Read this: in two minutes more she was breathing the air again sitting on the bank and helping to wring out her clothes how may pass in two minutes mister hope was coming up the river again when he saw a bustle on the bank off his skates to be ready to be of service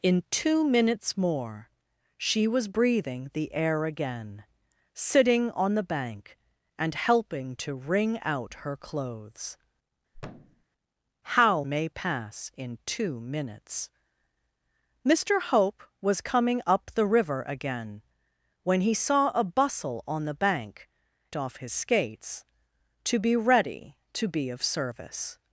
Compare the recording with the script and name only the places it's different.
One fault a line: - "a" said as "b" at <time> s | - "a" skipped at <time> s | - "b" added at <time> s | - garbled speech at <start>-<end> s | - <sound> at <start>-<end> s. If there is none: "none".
- thud at 10.1-10.7 s